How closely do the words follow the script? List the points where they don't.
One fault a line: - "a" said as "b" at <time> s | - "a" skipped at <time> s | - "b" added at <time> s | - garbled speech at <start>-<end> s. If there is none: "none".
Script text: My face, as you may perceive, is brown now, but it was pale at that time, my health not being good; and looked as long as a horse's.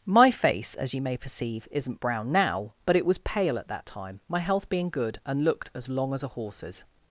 - "is" said as "isn't" at 1.7 s
- "not" skipped at 4.7 s